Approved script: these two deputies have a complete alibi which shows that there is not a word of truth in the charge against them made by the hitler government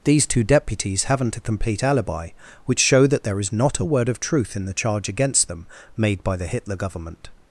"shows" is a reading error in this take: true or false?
true